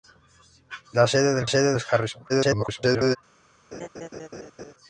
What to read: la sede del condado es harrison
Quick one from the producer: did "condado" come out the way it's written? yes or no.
no